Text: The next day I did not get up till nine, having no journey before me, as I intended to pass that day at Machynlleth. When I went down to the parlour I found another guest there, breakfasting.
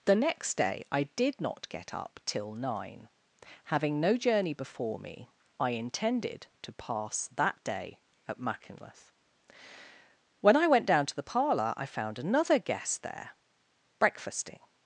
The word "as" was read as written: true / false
false